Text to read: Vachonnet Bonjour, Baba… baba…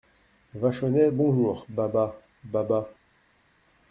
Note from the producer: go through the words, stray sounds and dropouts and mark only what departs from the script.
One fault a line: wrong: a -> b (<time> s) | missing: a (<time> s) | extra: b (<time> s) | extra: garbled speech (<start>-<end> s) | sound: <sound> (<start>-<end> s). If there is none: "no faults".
no faults